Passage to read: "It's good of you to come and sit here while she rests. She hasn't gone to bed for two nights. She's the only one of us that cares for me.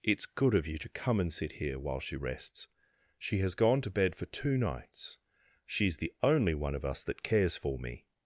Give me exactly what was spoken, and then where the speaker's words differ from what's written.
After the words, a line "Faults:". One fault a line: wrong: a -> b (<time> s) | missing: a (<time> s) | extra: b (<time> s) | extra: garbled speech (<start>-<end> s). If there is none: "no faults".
"It's good of you to come and sit here while she rests. She has gone to bed for two nights. She's the only one of us that cares for me.
Faults:
wrong: hasn't -> has (3.4 s)